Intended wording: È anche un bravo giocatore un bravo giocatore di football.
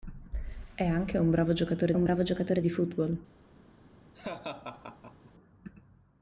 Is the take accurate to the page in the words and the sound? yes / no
no